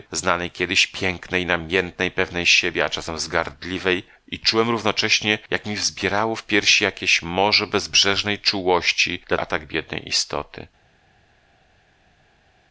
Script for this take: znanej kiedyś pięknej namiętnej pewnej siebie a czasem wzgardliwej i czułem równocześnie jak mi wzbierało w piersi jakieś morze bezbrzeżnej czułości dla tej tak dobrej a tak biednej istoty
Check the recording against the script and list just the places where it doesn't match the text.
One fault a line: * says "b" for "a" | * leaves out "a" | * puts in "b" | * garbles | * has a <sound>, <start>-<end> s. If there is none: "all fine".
* leaves out "tej tak dobrej"